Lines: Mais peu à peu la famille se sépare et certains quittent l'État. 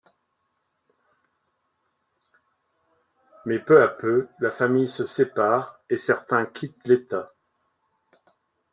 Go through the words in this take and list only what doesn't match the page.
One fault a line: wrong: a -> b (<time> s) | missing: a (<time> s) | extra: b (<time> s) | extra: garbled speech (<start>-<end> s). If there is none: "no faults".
no faults